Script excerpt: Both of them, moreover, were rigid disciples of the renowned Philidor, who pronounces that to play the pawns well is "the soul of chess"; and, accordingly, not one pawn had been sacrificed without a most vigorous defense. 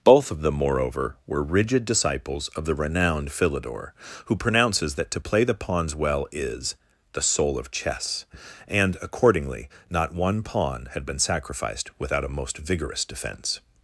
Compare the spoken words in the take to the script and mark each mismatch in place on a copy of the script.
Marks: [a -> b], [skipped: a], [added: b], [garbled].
Both of them, moreover, were rigid disciples of the renowned Philidor, who pronounces that to play the pawns well is "the soul of chess"; and, accordingly, not one pawn had been sacrificed without a most vigorous defense.